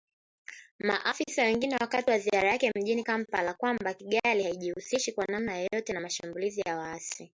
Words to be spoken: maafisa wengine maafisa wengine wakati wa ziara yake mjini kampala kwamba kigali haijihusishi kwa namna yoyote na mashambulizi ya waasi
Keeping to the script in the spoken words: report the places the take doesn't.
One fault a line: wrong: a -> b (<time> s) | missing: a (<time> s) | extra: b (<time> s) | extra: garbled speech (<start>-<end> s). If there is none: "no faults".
missing: maafisa wengine (1.8 s)